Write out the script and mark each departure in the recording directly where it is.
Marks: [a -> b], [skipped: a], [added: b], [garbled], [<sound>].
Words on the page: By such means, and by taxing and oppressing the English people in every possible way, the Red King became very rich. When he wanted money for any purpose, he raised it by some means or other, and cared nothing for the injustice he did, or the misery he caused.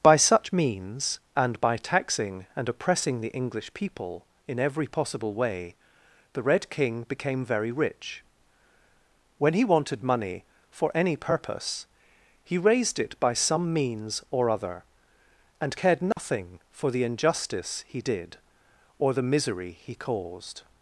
By such means, and by taxing and oppressing the English people in every possible way, the Red King became very rich. When he wanted money for any purpose, he raised it by some means or other, and cared nothing [dropout] for the injustice he did, or the misery he caused.